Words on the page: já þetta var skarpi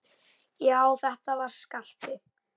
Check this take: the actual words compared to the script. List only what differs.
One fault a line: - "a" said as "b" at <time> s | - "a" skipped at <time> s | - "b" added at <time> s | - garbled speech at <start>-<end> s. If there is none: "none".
none